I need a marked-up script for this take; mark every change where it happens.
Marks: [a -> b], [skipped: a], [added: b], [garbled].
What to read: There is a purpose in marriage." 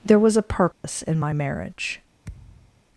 There [is -> was] a purpose in [added: my] marriage."